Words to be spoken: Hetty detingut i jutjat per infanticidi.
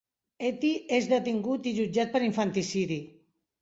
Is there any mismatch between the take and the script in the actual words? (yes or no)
yes